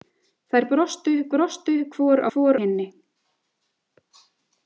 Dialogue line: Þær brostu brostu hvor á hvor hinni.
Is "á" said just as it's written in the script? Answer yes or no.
yes